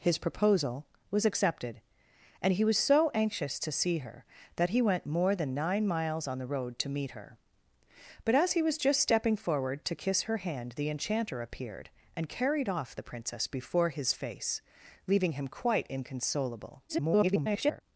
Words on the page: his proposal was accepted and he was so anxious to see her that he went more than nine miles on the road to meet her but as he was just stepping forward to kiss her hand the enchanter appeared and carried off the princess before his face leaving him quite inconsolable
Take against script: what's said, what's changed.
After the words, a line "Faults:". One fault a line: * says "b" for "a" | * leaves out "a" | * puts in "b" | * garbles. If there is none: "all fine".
his proposal was accepted and he was so anxious to see her that he went more than nine miles on the road to meet her but as he was just stepping forward to kiss her hand the enchanter appeared and carried off the princess before his face leaving him quite inconsolable [garbled]
Faults:
* garbles